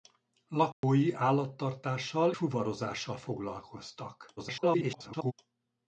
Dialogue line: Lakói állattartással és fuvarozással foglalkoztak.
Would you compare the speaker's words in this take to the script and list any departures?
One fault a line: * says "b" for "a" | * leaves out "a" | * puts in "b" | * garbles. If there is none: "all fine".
* leaves out "és"
* garbles